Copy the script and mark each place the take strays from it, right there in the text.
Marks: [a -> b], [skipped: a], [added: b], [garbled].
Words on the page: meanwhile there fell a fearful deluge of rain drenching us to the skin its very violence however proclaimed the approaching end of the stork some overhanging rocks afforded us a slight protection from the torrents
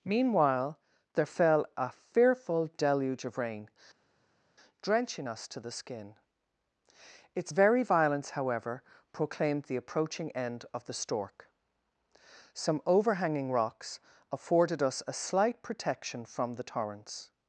meanwhile there fell a fearful deluge of rain drenching us to the skin its very violence however proclaimed the approaching end of the stork some overhanging rocks afforded us a slight protection from the torrents